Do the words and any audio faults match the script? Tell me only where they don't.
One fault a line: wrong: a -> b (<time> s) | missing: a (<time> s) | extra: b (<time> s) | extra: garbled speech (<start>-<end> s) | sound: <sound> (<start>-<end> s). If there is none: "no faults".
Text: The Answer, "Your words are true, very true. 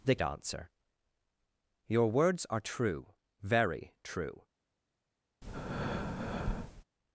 sound: breath (5.4-6.8 s)